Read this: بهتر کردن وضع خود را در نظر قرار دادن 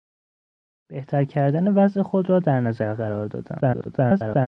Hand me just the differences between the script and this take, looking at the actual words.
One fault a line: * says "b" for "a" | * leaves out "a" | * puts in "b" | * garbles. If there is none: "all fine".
* garbles